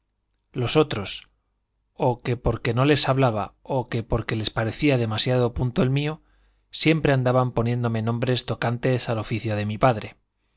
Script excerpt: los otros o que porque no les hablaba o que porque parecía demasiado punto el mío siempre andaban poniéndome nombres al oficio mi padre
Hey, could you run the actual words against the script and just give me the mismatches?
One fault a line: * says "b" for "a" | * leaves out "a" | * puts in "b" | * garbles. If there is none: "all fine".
* puts in "les"
* puts in "tocantes"
* puts in "de"